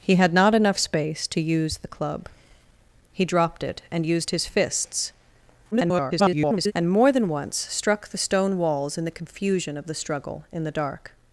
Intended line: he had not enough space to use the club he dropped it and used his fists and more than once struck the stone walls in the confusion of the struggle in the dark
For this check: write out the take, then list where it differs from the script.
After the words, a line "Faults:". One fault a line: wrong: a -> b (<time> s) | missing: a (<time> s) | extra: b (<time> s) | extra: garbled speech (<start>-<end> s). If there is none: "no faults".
he had not enough space to use the club he dropped it and used his fists [garbled] and more than once struck the stone walls in the confusion of the struggle in the dark
Faults:
extra: garbled speech (5.7-6.7 s)